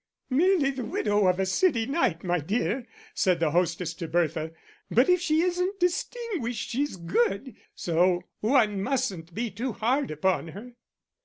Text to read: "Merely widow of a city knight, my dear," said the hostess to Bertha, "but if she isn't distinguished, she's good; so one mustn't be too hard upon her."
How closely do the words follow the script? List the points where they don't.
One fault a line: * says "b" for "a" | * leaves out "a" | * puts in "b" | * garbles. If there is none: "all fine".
* puts in "the"